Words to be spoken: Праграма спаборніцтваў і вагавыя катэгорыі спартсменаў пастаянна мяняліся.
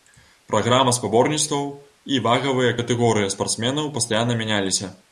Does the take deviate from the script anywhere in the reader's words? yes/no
no